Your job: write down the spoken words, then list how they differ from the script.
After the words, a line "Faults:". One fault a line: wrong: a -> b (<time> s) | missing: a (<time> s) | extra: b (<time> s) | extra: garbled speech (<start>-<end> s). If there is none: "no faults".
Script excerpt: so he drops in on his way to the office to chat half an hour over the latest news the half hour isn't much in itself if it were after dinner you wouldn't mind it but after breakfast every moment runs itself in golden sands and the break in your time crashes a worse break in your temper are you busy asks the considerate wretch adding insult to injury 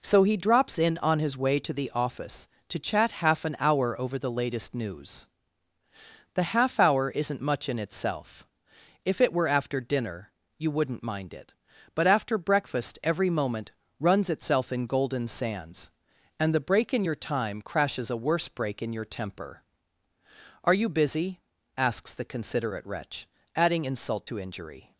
so he drops in on his way to the office to chat half an hour over the latest news the half hour isn't much in itself if it were after dinner you wouldn't mind it but after breakfast every moment runs itself in golden sands and the break in your time crashes a worse break in your temper are you busy asks the considerate wretch adding insult to injury
Faults:
no faults